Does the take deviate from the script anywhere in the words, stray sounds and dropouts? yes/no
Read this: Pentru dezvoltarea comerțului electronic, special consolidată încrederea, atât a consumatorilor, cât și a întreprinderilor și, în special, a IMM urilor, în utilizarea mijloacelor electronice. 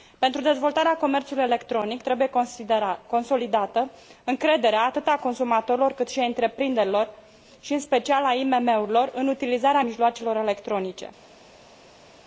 yes